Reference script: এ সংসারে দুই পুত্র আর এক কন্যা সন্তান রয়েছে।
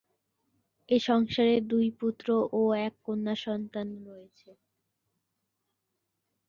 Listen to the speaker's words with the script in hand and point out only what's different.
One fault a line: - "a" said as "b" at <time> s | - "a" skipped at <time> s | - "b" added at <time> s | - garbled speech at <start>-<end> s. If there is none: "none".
- "আর" said as "ও" at 2.5 s